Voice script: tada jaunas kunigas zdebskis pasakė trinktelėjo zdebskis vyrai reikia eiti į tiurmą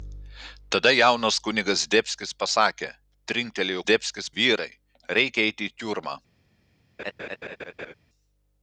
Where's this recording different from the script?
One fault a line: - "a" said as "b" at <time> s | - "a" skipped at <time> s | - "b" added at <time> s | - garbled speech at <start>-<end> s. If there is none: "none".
none